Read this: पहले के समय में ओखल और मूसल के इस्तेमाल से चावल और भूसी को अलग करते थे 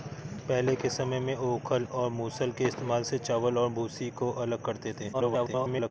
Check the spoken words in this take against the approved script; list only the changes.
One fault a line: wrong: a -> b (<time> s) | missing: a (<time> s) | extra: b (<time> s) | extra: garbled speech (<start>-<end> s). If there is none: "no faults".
extra: garbled speech (5.1-5.9 s)